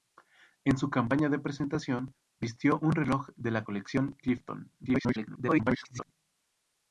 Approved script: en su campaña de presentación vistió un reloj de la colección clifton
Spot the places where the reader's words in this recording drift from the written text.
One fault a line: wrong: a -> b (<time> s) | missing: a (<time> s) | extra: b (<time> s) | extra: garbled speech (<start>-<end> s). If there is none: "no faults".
extra: garbled speech (4.8-6.1 s)